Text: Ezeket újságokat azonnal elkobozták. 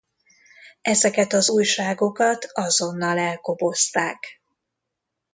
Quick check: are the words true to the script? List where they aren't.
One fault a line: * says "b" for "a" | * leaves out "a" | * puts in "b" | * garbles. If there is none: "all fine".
* puts in "az"